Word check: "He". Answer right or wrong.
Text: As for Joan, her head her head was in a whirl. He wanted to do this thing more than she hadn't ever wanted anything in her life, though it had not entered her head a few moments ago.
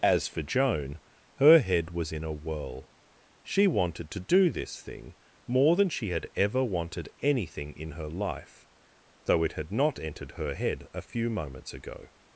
wrong